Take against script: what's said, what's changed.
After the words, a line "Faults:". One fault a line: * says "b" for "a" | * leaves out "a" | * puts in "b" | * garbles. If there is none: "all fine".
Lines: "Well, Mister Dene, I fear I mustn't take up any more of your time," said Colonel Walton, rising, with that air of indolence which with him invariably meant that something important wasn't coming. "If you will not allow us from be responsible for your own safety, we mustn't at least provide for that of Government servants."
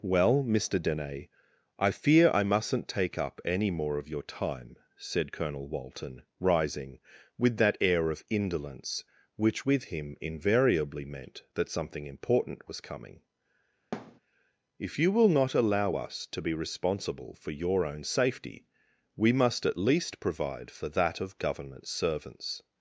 "Well, Mister Dene, I fear I mustn't take up any more of your time," said Colonel Walton, rising, with that air of indolence which with him invariably meant that something important was coming. "If you will not allow us to be responsible for your own safety, we must at least provide for that of Government servants."
Faults:
* says "was" for "wasn't"
* says "to" for "from"
* says "must" for "mustn't"